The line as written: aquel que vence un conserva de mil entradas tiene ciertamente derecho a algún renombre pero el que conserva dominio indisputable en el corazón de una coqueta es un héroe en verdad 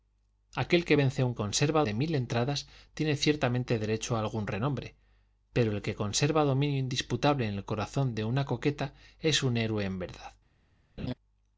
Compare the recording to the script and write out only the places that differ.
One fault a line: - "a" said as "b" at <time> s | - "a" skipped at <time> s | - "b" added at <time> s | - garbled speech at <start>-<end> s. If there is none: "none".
none